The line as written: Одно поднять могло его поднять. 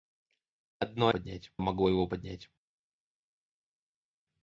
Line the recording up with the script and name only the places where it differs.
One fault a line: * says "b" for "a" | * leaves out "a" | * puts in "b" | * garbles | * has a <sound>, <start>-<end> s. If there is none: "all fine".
all fine